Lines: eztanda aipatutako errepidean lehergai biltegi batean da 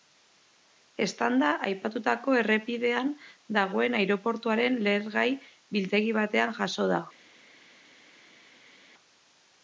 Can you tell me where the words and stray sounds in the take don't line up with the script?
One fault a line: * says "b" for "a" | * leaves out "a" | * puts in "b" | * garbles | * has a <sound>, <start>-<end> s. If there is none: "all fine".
* puts in "dagoen aireportuaren"
* puts in "jazo"